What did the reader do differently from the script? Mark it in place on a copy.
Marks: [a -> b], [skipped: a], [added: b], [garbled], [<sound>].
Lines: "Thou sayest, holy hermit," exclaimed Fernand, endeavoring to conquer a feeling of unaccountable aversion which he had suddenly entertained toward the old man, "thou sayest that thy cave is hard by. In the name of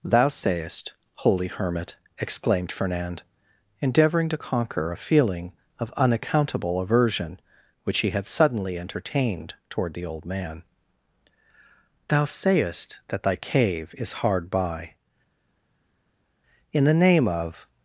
"Thou sayest, holy hermit," exclaimed Fernand, endeavoring to conquer a feeling of unaccountable aversion which he had suddenly entertained toward the old man, "thou sayest that thy cave is hard by. In the name of